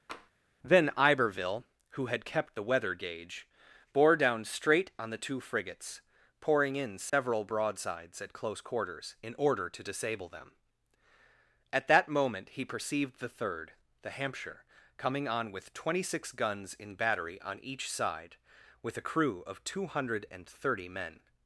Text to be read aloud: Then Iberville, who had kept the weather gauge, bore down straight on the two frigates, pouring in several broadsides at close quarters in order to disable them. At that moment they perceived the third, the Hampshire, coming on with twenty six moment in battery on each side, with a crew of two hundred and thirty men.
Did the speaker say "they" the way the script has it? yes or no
no